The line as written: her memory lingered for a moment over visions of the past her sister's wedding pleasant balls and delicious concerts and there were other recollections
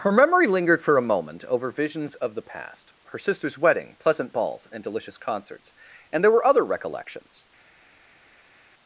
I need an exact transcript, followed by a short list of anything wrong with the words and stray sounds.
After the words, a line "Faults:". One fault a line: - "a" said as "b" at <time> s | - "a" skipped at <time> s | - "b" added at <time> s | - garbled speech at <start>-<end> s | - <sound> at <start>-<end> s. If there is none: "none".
her memory lingered for a moment over visions of the past her sister's wedding pleasant balls and delicious concerts and there were other recollections
Faults:
none